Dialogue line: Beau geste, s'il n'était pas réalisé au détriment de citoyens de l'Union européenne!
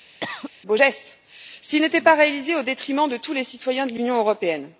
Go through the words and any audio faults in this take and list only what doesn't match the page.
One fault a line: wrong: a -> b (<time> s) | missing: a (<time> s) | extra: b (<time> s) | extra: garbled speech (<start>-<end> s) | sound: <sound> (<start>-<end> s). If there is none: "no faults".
sound: cough (0.2-0.5 s)
extra: tous les (3.2 s)